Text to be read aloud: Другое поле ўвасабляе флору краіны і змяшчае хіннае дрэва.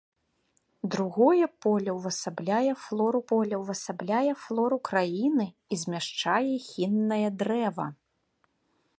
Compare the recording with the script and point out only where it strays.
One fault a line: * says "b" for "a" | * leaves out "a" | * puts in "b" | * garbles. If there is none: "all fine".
* puts in "поле ўвасабляе флору"